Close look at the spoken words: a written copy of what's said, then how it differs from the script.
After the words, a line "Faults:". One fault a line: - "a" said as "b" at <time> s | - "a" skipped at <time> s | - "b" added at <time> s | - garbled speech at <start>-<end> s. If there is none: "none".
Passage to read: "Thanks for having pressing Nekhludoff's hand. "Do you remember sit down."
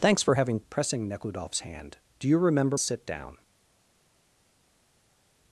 "Thanks for having pressing Nekhludoff's hand. "Do you remember sit down."
Faults:
none